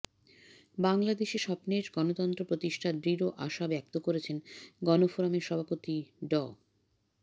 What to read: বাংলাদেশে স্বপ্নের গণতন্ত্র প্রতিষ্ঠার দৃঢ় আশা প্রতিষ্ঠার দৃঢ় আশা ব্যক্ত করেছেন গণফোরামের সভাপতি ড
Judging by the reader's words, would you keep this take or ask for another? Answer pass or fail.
fail